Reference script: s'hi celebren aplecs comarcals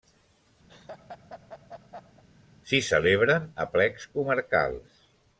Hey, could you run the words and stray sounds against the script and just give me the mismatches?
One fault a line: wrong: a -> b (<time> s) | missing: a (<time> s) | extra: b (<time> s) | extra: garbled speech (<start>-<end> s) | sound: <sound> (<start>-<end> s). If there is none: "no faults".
sound: laugh (0.7-2.2 s)